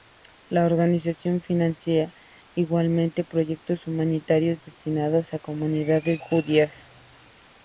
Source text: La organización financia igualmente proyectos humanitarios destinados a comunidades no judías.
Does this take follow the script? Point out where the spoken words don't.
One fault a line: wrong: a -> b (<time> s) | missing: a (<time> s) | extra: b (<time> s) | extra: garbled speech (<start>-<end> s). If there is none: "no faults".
missing: no (6.2 s)